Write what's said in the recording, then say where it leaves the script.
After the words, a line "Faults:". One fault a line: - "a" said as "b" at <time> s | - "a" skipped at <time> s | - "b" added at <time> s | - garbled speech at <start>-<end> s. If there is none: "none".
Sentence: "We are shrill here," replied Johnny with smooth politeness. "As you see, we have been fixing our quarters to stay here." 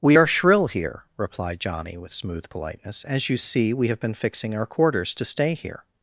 "We are shrill here," replied Johnny with smooth politeness. "As you see, we have been fixing our quarters to stay here."
Faults:
none